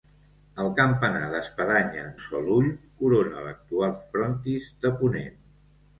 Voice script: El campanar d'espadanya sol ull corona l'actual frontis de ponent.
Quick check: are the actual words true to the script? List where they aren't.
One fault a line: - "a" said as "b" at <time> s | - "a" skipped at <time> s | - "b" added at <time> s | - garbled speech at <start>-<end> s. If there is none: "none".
none